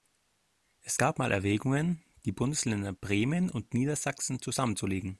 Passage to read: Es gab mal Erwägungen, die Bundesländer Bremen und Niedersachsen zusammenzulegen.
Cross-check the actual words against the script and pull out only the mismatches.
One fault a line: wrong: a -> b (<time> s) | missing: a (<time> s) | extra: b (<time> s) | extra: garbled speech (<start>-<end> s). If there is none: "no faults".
no faults